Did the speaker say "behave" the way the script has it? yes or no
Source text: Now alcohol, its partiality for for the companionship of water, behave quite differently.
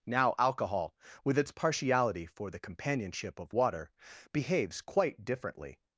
no